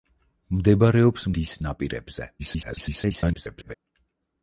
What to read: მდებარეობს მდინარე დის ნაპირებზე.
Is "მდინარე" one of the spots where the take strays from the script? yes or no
yes